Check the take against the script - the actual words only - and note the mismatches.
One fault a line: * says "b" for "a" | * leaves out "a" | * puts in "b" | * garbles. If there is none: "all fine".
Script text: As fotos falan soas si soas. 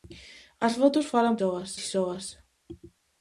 all fine